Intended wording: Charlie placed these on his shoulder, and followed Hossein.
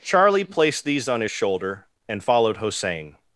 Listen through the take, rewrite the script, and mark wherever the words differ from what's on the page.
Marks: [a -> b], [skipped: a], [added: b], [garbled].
Charlie placed these on his shoulder, and followed Hossein.